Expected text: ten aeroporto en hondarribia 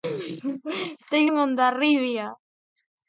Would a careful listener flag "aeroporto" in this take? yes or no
yes